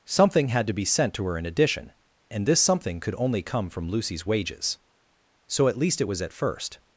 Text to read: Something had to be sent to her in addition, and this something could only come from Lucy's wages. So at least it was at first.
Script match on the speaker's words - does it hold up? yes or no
yes